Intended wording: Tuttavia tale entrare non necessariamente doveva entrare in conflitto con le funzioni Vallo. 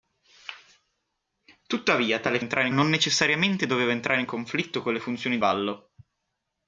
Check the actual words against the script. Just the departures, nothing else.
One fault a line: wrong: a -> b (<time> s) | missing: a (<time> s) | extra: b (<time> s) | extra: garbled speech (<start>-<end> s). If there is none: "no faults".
no faults